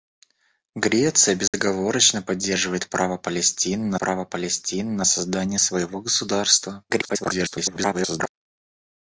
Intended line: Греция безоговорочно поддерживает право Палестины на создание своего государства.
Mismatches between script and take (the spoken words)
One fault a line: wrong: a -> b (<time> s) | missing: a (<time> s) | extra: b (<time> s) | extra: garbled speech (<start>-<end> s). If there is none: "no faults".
extra: право Палестины на (4.0 s)
extra: garbled speech (6.9-8.3 s)